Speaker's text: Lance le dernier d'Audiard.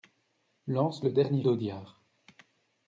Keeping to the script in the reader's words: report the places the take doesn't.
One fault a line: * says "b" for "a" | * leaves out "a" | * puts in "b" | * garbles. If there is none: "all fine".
all fine